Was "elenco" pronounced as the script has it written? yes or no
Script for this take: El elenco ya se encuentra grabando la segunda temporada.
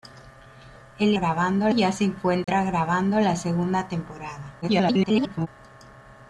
no